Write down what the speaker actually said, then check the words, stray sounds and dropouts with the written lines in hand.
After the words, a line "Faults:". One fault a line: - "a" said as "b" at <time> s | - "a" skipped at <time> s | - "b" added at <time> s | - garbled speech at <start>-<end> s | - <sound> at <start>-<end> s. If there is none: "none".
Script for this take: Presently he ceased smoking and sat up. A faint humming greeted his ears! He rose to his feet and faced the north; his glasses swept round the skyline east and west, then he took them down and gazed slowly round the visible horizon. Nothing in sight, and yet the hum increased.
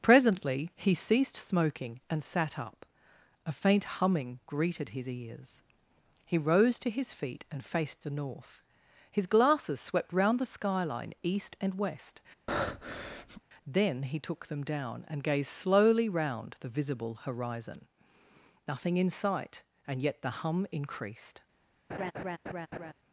Presently he ceased smoking and sat up. A faint humming greeted his ears! He rose to his feet and faced the north; his glasses swept round the skyline east and west, then he took them down and gazed slowly round the visible horizon. Nothing in sight, and yet the hum increased.
Faults:
- breath at 12.5-13.4 s
- laugh at 21.9-22.9 s